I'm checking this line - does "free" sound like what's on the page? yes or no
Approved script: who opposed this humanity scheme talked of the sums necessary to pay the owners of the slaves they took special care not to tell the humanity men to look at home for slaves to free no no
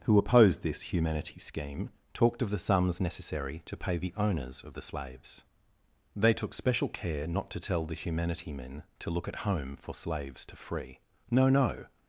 yes